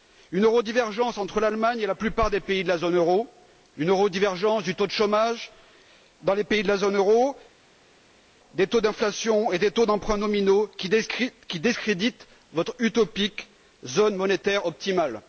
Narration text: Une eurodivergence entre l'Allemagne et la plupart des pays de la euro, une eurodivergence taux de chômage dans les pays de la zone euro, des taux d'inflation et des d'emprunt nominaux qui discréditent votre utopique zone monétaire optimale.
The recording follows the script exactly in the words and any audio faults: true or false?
false